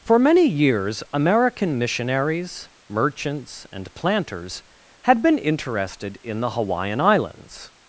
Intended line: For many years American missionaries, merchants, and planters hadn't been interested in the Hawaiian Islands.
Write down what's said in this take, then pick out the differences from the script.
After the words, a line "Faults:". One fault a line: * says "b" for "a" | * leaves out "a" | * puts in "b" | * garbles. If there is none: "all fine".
For many years American missionaries, merchants, and planters had been interested in the Hawaiian Islands.
Faults:
* says "had" for "hadn't"